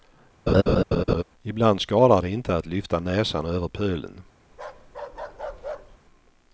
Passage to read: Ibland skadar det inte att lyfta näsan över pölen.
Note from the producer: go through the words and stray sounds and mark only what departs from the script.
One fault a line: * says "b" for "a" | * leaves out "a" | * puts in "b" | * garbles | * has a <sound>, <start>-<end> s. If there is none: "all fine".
* has a laugh, 0.5-1.2 s
* has a bark, 4.5-6.0 s